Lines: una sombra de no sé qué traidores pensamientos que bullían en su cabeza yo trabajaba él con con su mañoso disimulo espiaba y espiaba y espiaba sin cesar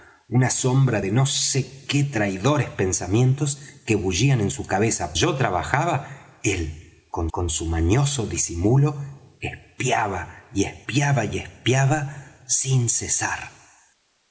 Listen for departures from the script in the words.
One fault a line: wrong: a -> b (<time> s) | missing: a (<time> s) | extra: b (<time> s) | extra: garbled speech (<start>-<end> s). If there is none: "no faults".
no faults